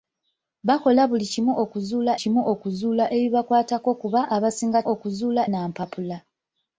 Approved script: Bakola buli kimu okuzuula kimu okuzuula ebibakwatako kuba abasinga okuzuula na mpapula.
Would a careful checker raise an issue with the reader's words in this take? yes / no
no